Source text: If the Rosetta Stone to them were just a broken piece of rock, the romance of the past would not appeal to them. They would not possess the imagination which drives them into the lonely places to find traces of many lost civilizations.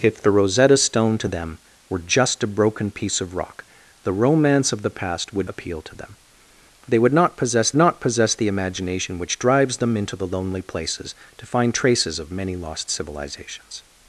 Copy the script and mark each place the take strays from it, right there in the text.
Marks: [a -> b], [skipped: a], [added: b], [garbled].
If the Rosetta Stone to them were just a broken piece of rock, the romance of the past would [skipped: not] appeal to them. They would not possess [added: not possess] the imagination which drives them into the lonely places to find traces of many lost civilizations.